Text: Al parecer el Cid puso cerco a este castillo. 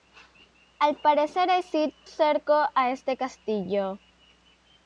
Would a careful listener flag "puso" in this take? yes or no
yes